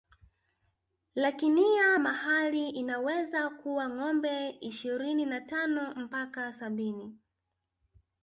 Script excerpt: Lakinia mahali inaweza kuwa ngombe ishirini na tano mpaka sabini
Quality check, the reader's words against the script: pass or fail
pass